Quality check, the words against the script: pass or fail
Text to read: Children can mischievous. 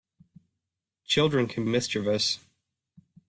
pass